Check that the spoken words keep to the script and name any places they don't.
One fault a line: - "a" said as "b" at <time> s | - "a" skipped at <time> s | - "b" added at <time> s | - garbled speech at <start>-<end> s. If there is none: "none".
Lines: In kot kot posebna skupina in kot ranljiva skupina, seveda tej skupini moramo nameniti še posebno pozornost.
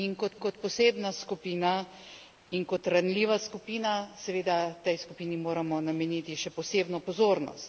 none